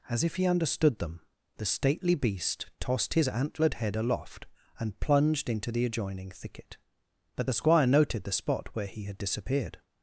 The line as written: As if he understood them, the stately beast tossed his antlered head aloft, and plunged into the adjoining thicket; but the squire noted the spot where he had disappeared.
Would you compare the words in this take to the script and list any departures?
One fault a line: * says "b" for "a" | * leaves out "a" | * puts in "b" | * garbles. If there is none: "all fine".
all fine